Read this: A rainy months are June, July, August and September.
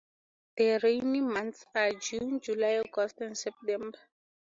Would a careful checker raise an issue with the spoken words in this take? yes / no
yes